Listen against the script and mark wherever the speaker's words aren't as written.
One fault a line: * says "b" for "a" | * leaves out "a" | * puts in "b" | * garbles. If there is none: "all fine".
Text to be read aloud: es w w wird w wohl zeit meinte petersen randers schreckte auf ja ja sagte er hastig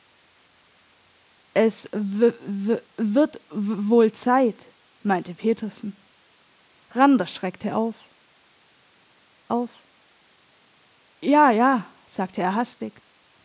* puts in "auf"